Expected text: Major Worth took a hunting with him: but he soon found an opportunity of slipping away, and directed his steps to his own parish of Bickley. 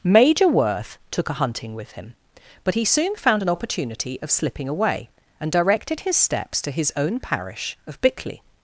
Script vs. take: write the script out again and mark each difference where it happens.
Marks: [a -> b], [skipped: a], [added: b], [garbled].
Major Worth took a hunting with him: but he soon found an opportunity of slipping away, and directed his steps to his own parish of Bickley.